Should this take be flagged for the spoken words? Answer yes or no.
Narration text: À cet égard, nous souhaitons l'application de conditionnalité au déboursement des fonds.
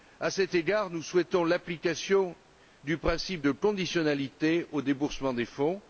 yes